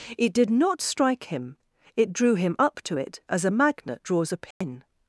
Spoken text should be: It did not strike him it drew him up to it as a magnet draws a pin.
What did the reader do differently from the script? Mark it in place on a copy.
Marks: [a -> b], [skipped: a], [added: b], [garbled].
It did not strike him it drew him up to it as a magnet draws a pin.